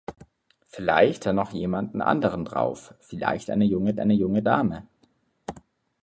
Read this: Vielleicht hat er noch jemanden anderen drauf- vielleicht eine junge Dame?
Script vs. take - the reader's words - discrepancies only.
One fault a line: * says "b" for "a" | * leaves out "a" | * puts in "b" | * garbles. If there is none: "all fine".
* leaves out "hat"
* puts in "eine junge"